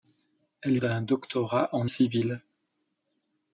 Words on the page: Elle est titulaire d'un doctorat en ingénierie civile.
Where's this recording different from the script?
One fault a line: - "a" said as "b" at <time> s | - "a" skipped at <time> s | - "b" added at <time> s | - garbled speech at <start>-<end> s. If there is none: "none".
- "est titulaire" skipped at 0.8 s
- "ingénierie" skipped at 1.9 s